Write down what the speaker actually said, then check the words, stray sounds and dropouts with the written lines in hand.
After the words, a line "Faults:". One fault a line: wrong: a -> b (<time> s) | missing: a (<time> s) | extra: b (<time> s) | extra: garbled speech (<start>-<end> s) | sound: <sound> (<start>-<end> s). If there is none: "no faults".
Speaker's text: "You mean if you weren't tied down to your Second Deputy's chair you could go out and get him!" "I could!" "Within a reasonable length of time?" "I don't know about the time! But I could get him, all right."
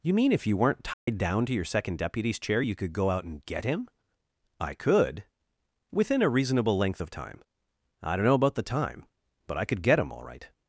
"You mean if you weren't tied down to your Second Deputy's chair you could go out and get him!" "I could!" "Within a reasonable length of time?" "I don't know about the time! But I could get him, all right."
Faults:
sound: dropout (0.9-1.1 s)